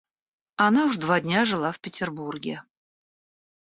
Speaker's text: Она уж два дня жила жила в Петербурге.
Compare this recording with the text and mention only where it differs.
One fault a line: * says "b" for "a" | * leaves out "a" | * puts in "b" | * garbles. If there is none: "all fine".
* leaves out "жила"